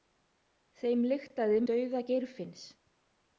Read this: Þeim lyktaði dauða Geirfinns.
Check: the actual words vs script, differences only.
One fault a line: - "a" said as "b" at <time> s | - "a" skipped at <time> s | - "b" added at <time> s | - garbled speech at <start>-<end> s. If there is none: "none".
none